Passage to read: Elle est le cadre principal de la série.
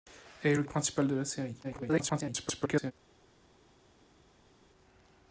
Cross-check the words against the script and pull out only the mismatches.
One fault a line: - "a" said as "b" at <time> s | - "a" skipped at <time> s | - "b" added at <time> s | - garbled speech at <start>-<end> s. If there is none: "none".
- "cadre" skipped at 0.6 s
- garbled speech at 1.6-2.9 s